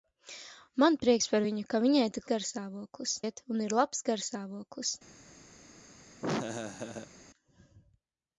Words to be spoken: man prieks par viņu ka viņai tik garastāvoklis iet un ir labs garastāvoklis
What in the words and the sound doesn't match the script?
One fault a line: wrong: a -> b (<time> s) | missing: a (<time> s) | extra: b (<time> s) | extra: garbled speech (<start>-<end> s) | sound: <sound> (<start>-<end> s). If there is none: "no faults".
sound: laugh (6.2-7.1 s)